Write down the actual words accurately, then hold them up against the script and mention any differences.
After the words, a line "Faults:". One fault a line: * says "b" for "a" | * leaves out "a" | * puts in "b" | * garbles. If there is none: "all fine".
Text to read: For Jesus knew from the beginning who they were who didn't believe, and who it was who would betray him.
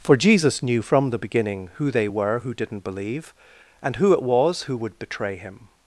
For Jesus knew from the beginning who they were who didn't believe, and who it was who would betray him.
Faults:
all fine